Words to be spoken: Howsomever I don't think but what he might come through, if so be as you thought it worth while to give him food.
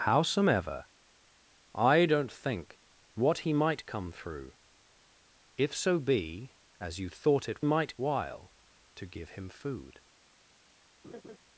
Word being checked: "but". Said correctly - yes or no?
no